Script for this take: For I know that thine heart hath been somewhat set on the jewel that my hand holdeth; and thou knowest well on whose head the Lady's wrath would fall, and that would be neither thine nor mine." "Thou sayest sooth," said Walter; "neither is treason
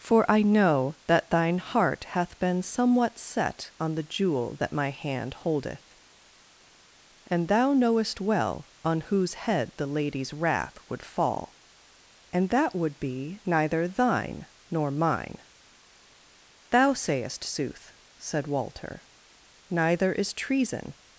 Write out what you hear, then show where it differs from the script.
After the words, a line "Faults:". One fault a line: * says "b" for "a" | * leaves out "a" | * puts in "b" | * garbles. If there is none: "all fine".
For I know that thine heart hath been somewhat set on the jewel that my hand holdeth; and thou knowest well on whose head the Lady's wrath would fall, and that would be neither thine nor mine." "Thou sayest sooth," said Walter; "neither is treason
Faults:
all fine